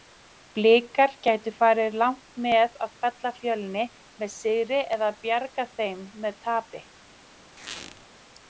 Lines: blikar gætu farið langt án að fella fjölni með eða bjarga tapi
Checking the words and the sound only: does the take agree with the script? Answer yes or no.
no